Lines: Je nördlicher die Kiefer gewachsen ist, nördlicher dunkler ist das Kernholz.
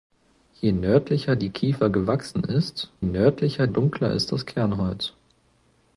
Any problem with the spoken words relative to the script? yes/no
no